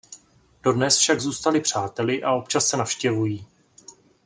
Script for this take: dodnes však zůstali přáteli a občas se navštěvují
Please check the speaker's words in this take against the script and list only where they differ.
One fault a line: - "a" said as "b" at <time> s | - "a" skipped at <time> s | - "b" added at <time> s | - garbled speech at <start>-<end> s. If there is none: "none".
none